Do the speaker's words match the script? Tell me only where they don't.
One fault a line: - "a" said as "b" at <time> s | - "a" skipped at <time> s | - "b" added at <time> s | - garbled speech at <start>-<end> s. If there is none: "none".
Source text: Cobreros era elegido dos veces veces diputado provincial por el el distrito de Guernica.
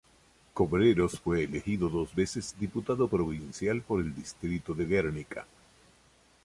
- "era" said as "fue" at 1.2 s
- "veces" skipped at 2.5 s
- "el" skipped at 4.1 s